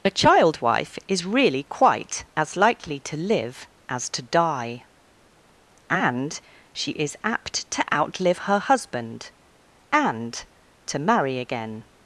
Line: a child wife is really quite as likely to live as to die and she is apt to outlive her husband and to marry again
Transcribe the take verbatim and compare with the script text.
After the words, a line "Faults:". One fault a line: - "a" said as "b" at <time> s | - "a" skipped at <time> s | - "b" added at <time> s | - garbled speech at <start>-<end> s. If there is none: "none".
a child wife is really quite as likely to live as to die and she is apt to outlive her husband and to marry again
Faults:
none